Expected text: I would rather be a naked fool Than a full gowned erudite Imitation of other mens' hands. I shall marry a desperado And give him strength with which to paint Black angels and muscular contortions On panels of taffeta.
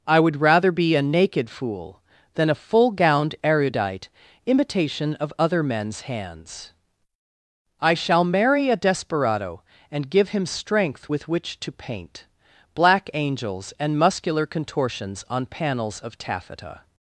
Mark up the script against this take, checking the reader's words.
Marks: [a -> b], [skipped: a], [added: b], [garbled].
I would rather be a naked fool Than a full gowned erudite Imitation of other mens' hands. I shall marry a desperado And give him strength with which to paint Black angels and muscular contortions On panels of taffeta.